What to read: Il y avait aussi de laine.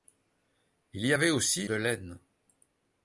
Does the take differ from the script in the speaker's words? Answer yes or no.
no